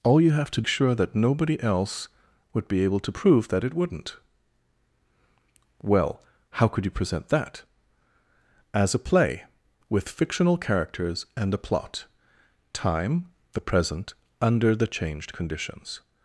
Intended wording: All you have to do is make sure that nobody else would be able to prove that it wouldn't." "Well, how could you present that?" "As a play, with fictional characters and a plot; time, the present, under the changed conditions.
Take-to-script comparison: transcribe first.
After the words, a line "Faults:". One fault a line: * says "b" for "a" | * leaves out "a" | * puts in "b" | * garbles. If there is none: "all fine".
All you have to sure that nobody else would be able to prove that it wouldn't." "Well, how could you present that?" "As a play, with fictional characters and a plot; time, the present, under the changed conditions.
Faults:
* leaves out "do is make"